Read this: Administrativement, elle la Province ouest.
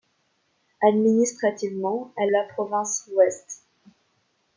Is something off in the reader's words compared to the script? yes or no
no